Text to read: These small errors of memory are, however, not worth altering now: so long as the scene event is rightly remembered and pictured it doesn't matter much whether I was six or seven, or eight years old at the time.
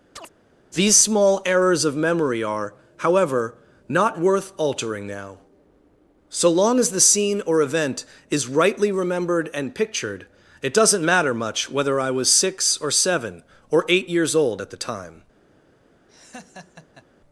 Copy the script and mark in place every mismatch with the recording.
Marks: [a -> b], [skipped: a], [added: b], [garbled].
These small errors of memory are, however, not worth altering now: so long as the scene [added: or] event is rightly remembered and pictured it doesn't matter much whether I was six or seven, or eight years old at the time.